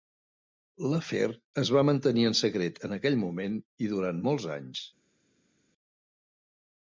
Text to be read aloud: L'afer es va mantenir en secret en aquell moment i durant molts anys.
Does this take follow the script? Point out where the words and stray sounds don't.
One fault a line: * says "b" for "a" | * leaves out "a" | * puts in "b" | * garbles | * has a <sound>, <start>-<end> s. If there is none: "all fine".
all fine